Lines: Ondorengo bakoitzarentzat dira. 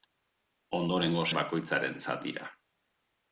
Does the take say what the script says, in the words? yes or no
yes